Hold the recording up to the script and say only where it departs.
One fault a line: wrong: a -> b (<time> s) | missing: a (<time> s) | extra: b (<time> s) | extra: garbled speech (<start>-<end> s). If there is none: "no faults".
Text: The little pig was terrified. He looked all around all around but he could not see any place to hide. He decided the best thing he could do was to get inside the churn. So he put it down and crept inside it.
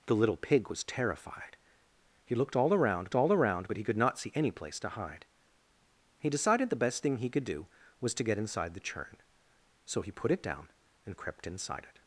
no faults